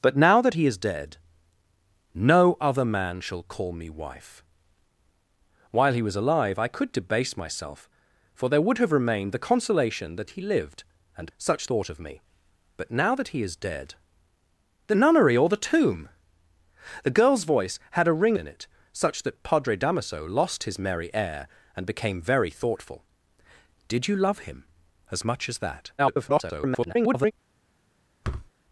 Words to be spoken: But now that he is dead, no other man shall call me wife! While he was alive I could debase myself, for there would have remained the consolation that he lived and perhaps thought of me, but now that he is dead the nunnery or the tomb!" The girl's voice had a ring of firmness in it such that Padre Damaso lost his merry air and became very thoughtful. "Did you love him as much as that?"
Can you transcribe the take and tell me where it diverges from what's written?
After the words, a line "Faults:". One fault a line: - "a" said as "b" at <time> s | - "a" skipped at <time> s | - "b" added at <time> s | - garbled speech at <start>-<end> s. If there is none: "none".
But now that he is dead, no other man shall call me wife! While he was alive I could debase myself, for there would have remained the consolation that he lived and such thought of me, but now that he is dead the nunnery or the tomb!" The girl's voice had a ring in it such that Padre Damaso lost his merry air and became very thoughtful. "Did you love him as much as that?" [garbled]
Faults:
- "perhaps" said as "such" at 11.4 s
- "of firmness" skipped at 18.4 s
- garbled speech at 26.0-27.3 s